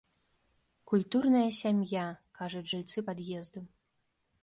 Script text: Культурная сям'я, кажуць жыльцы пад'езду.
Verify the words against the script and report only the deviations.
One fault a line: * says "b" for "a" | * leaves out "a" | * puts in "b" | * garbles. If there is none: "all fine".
all fine